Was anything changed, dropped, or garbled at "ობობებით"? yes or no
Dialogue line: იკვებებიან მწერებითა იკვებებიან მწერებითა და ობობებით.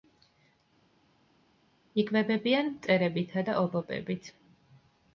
no